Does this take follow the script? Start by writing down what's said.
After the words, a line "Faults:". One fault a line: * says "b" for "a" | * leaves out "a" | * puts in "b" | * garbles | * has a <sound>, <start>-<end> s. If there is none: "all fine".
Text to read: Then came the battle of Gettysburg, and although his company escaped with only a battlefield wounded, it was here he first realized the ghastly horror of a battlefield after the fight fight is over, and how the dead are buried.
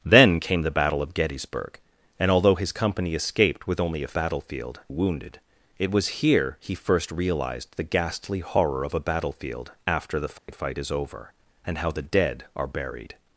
Then came the battle of Gettysburg, and although his company escaped with only a battlefield wounded, it was here he first realized the ghastly horror of a battlefield after the fight fight is over, and how the dead are buried.
Faults:
* has a dropout, 10.4-10.5 s